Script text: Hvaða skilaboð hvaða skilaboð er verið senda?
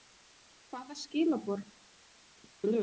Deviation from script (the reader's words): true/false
true